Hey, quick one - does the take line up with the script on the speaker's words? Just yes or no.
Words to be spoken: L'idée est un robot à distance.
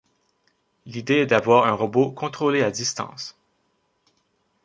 no